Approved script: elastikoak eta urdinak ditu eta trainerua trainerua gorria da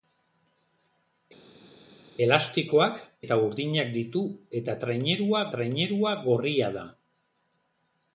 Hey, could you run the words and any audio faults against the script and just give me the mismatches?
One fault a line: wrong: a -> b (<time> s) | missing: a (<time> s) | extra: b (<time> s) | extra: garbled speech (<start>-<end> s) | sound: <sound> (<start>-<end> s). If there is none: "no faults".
no faults